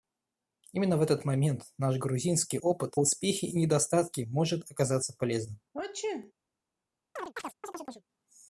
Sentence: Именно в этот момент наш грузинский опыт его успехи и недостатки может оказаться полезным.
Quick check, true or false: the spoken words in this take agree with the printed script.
false